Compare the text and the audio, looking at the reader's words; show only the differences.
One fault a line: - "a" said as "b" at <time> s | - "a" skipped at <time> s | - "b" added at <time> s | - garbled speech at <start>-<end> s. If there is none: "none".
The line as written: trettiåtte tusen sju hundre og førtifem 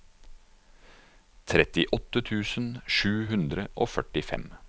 none